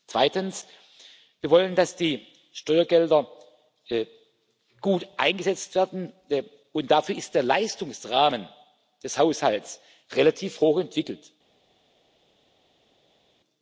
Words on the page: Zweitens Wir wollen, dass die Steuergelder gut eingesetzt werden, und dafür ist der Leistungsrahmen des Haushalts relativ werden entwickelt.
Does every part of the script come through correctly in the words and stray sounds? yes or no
no